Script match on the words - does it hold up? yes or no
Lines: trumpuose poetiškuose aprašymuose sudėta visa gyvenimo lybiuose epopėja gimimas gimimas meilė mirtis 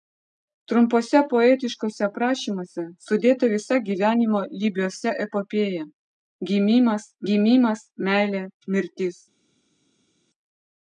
yes